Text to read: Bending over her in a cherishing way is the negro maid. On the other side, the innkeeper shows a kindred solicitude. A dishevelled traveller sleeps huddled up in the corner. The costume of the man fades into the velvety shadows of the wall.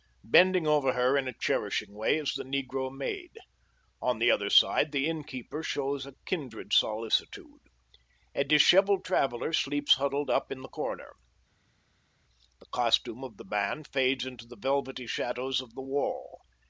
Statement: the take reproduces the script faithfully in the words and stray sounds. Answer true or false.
true